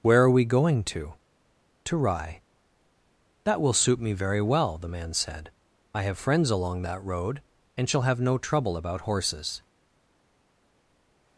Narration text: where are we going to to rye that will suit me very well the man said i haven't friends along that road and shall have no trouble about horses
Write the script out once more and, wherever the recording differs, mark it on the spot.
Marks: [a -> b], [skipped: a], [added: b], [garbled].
where are we going to to rye that will suit me very well the man said i [haven't -> have] friends along that road and shall have no trouble about horses